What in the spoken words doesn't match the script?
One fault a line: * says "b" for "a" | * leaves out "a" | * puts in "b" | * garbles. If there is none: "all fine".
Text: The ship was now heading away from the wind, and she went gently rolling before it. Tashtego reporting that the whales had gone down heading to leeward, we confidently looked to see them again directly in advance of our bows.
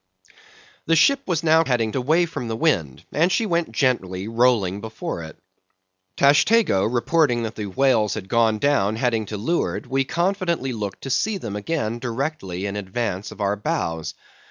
all fine